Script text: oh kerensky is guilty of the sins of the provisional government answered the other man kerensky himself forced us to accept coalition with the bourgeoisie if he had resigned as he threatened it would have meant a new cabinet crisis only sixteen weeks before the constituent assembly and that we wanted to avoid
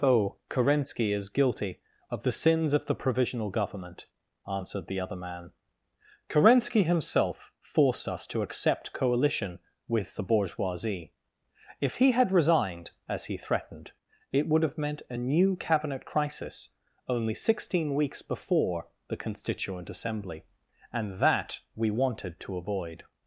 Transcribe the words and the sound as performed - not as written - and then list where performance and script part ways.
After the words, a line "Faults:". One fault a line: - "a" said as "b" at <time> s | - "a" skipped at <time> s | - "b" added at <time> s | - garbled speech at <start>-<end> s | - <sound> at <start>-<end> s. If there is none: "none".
oh kerensky is guilty of the sins of the provisional government answered the other man kerensky himself forced us to accept coalition with the bourgeoisie if he had resigned as he threatened it would have meant a new cabinet crisis only sixteen weeks before the constituent assembly and that we wanted to avoid
Faults:
none